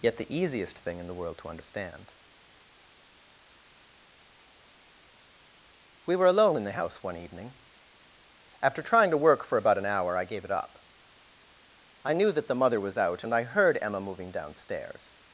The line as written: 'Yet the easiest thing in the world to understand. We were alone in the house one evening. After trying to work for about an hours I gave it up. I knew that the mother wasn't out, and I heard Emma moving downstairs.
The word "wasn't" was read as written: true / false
false